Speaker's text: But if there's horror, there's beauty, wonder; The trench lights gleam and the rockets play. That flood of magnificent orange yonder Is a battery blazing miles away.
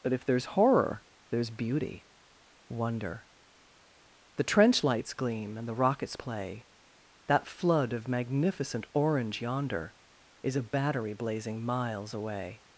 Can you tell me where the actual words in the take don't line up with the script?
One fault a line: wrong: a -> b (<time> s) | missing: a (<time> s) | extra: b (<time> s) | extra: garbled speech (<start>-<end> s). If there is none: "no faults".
no faults